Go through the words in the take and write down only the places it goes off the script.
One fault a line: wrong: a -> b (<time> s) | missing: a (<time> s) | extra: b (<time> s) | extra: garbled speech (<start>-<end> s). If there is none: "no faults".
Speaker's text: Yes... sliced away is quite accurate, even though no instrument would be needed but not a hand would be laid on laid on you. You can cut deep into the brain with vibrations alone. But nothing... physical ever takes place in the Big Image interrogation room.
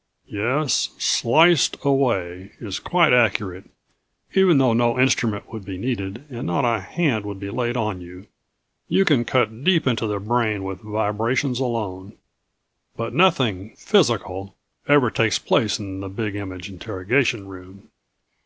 wrong: but -> and (6.3 s)
missing: laid on (8.0 s)